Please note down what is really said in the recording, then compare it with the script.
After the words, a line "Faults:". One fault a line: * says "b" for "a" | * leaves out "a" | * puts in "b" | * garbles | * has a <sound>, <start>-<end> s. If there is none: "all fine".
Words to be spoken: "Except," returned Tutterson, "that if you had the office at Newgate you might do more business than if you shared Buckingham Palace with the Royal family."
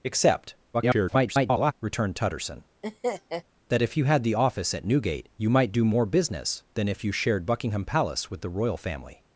"Except," [garbled] returned Tutterson, "that if you had the office at Newgate you might do more business than if you shared Buckingham Palace with the Royal family."
Faults:
* garbles
* has a laugh, 2.8-3.4 s